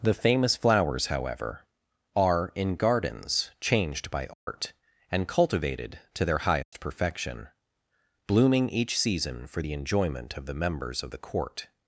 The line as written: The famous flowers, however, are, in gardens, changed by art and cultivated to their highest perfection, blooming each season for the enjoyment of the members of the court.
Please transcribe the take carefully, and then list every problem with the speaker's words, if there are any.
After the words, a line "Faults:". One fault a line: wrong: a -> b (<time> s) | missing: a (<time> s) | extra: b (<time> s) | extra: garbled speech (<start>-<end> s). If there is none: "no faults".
The famous flowers, however, are, in gardens, changed by art and cultivated to their highest perfection, blooming each season for the enjoyment of the members of the court.
Faults:
no faults